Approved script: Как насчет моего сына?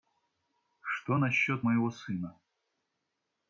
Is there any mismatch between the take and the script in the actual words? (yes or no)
yes